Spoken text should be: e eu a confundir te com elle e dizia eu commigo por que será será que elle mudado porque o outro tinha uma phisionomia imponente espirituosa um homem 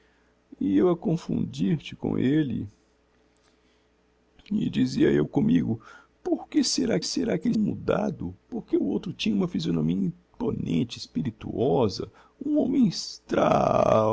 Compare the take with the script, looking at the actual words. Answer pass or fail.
pass